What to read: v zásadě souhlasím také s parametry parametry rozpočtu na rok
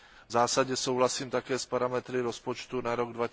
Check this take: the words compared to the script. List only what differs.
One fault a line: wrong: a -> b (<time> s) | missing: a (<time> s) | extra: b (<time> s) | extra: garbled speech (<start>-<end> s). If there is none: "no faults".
missing: parametry (2.2 s)